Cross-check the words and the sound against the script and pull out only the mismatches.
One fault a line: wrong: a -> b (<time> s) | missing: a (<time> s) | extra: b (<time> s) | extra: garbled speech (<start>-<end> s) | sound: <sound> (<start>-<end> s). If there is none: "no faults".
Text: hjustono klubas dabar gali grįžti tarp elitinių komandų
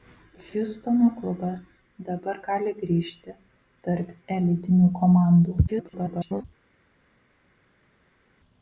extra: garbled speech (5.7-6.4 s)